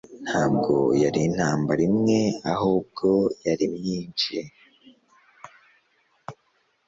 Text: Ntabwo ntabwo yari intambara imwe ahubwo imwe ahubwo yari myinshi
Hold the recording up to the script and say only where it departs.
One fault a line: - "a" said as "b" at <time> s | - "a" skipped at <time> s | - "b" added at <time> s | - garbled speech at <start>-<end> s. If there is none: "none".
- "ntabwo" skipped at 0.7 s
- "imwe ahubwo" skipped at 3.1 s